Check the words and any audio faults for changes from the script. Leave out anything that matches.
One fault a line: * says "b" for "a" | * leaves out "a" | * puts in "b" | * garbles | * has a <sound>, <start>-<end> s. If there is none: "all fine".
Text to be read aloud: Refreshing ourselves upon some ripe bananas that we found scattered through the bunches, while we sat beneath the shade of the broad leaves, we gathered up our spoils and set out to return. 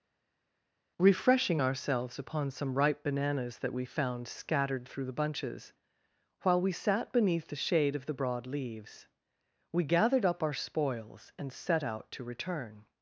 all fine